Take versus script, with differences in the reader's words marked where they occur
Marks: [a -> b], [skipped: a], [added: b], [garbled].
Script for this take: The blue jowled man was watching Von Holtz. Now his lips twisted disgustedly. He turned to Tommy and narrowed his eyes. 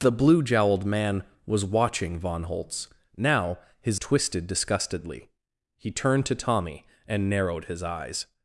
The blue jowled man was watching Von Holtz. Now his [skipped: lips] twisted disgustedly. He turned to Tommy and narrowed his eyes.